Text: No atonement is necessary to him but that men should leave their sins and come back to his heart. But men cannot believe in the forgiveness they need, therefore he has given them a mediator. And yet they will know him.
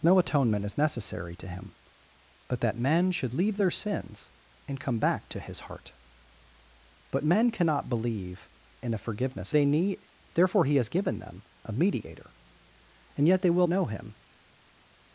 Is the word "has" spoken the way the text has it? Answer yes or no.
yes